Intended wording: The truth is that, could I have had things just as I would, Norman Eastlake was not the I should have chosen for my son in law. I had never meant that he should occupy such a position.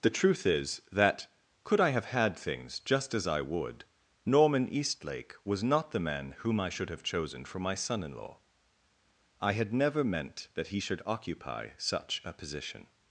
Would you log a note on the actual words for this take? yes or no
yes